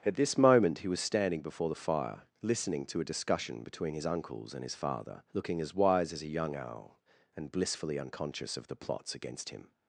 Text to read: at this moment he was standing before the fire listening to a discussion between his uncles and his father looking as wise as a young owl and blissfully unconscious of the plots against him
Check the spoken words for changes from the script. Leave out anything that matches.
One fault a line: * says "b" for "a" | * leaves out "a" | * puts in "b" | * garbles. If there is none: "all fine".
all fine